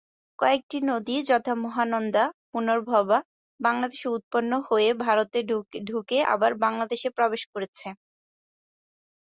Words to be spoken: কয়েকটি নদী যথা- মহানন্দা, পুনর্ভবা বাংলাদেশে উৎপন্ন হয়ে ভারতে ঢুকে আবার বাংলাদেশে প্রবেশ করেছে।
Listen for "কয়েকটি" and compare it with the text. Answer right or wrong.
right